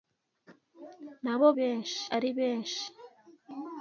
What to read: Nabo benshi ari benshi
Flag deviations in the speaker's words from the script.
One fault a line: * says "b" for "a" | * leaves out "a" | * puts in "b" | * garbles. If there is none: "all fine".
all fine